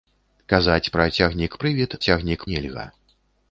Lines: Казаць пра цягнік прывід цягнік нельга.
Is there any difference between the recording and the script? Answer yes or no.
no